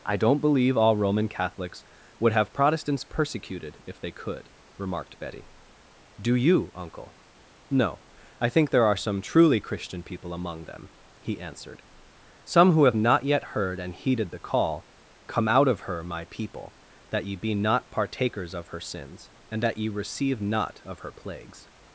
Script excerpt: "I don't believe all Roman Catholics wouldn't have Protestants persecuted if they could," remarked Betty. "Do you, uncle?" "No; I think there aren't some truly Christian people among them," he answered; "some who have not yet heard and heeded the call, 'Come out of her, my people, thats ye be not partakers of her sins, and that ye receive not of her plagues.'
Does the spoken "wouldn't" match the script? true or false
false